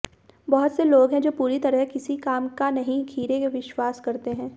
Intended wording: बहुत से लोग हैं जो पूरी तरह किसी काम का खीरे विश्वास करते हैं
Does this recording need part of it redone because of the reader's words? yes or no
yes